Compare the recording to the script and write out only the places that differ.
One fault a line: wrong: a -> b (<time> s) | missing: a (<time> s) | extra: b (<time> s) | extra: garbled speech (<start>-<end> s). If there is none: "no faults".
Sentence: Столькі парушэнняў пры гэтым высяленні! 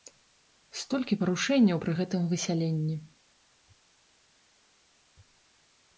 no faults